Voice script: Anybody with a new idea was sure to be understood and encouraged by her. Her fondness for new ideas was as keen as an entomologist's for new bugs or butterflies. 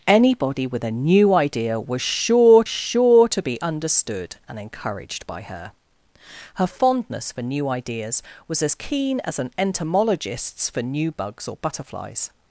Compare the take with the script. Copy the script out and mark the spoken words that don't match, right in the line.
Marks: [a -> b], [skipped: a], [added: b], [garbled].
Anybody with a new idea was sure [added: sure] to be understood and encouraged by her. Her fondness for new ideas was as keen as an entomologist's for new bugs or butterflies.